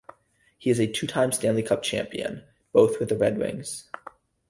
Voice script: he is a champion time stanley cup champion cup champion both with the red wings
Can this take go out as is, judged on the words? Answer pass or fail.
fail